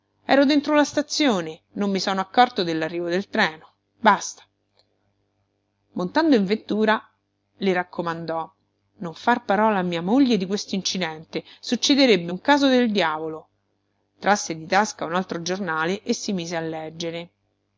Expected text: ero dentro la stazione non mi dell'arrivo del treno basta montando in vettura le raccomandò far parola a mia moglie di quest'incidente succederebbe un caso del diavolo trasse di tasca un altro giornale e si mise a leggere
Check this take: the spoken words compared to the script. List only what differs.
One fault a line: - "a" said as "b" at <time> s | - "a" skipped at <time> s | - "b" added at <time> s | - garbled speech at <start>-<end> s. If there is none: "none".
- "sono accorto" added at 2.0 s
- "non" added at 9.0 s